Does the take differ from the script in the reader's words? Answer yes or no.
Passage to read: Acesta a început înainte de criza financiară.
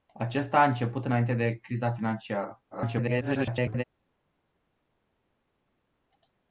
yes